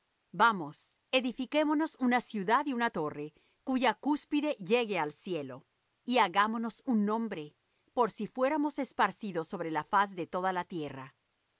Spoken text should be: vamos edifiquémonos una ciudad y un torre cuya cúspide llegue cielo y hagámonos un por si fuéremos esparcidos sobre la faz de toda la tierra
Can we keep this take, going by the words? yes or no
no